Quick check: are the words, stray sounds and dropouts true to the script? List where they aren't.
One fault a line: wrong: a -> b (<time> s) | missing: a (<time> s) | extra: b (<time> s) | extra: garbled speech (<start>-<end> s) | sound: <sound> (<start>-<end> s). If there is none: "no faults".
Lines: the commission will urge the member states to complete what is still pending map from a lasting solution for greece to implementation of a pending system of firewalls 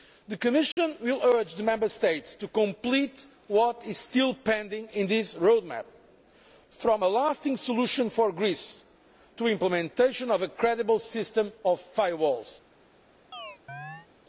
sound: dropout (0.7-0.8 s)
extra: in this road (4.9 s)
wrong: pending -> credible (10.5 s)
sound: chirp (13.3-14.1 s)